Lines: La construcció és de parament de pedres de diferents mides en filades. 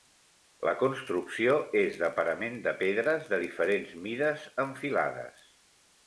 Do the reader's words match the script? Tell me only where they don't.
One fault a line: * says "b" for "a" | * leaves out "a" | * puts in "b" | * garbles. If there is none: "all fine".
all fine